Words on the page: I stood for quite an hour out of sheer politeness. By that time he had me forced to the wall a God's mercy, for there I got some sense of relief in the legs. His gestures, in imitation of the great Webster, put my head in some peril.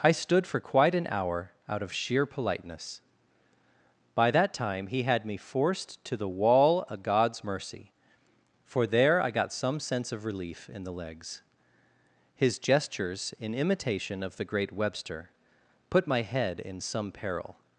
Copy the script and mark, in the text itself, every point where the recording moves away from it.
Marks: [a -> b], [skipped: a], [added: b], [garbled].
I stood for quite an hour out of sheer politeness. By that time he had me forced to the wall [a -> of] God's mercy, for there I got some sense of relief in the legs. His gestures, in imitation of the great Webster, put my head in some peril.